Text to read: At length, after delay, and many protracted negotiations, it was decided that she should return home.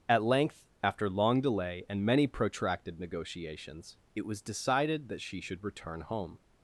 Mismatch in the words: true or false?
true